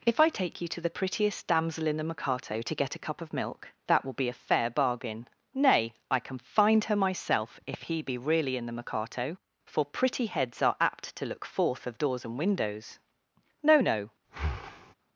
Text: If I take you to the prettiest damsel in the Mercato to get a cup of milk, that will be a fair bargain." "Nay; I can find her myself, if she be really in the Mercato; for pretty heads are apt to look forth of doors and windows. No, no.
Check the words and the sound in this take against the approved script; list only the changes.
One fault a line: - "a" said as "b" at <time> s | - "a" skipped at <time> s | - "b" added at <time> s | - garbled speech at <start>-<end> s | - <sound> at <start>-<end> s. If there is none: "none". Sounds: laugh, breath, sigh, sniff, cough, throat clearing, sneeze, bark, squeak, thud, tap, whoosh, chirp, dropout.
- "she" said as "he" at 7.8 s
- breath at 14.2-14.9 s